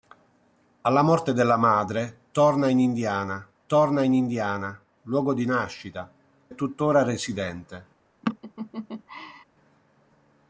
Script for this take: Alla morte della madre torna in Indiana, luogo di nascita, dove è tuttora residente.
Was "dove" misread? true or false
true